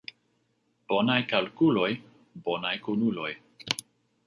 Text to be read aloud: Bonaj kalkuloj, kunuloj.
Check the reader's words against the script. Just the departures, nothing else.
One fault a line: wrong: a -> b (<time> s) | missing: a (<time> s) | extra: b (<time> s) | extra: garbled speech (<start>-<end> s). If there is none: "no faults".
extra: bonaj (2.5 s)